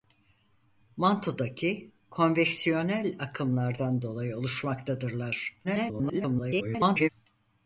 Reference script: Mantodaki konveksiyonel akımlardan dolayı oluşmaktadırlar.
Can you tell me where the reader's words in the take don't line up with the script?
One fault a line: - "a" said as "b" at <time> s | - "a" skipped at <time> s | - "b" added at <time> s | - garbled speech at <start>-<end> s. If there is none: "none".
- garbled speech at 5.6-7.1 s